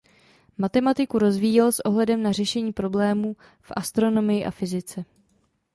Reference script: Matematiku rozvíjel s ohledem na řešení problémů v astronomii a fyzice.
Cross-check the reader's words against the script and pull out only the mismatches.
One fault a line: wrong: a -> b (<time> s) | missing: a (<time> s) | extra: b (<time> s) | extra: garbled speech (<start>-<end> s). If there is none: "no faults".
no faults